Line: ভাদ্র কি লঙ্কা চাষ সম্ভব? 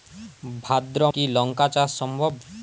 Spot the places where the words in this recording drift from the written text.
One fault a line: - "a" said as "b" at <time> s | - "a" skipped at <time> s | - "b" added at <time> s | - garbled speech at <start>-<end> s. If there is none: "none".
none